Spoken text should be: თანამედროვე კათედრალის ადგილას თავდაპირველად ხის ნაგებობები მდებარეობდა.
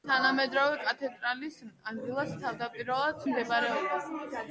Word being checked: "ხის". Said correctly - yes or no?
no